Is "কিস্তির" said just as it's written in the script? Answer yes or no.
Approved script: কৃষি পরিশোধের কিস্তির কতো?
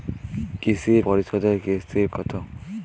yes